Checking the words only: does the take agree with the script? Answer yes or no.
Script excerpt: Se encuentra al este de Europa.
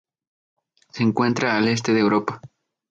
yes